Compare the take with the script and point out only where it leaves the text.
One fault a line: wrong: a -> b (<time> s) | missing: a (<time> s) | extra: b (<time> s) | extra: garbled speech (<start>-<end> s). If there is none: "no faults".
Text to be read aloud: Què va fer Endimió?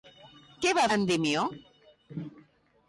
missing: fer (0.8 s)